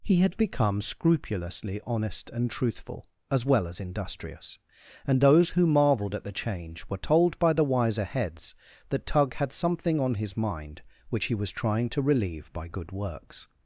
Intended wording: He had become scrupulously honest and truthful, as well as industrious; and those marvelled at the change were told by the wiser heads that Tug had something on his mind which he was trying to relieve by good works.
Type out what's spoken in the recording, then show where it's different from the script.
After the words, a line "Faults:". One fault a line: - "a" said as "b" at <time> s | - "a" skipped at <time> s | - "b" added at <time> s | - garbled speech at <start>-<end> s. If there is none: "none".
He had become scrupulously honest and truthful, as well as industrious; and those who marvelled at the change were told by the wiser heads that Tug had something on his mind which he was trying to relieve by good works.
Faults:
- "who" added at 5.5 s